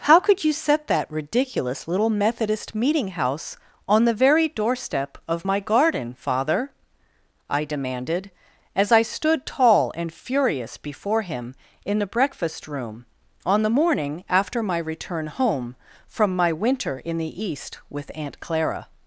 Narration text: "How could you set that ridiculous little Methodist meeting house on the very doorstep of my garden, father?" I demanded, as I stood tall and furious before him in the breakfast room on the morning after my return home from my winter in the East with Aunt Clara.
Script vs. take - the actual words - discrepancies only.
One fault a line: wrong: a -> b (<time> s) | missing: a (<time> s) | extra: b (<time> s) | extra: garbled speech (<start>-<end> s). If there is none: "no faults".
no faults